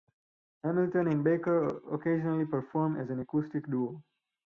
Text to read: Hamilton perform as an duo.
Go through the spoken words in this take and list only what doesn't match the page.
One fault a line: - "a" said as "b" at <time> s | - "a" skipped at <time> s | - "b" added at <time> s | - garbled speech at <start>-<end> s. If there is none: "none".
- "and Baker occasionally" added at 1.1 s
- "acoustic" added at 3.2 s